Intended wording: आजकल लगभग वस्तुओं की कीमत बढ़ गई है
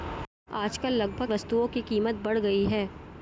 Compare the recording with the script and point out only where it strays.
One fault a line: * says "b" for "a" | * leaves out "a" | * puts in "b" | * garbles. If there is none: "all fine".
all fine